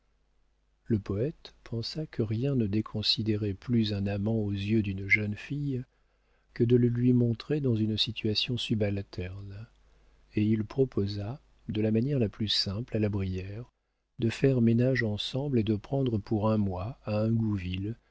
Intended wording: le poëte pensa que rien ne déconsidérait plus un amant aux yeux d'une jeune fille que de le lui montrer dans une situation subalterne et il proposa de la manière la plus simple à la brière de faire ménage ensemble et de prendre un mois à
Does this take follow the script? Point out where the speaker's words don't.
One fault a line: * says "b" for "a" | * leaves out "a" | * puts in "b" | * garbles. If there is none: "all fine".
* puts in "pour"